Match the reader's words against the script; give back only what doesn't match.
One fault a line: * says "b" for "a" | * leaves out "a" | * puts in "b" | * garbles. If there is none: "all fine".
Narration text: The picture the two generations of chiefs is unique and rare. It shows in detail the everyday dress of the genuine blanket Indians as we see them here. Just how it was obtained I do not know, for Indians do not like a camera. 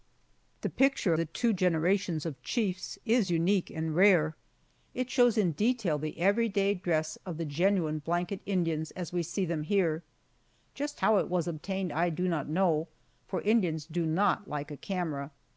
all fine